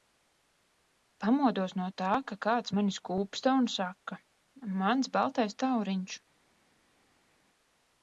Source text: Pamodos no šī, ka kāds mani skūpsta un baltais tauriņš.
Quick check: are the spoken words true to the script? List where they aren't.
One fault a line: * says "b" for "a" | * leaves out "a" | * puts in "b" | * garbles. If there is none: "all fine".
* says "tā" for "šī"
* puts in "saka mans"